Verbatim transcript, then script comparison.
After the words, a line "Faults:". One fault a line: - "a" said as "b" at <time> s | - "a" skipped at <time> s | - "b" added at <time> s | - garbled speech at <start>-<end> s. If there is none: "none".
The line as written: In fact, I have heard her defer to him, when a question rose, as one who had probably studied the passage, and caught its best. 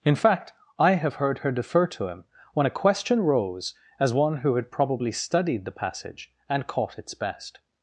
In fact, I have heard her defer to him, when a question rose, as one who had probably studied the passage, and caught its best.
Faults:
none